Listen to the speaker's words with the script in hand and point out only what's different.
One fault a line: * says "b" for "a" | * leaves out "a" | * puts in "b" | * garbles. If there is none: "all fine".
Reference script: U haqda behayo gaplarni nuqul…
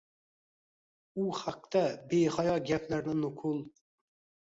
all fine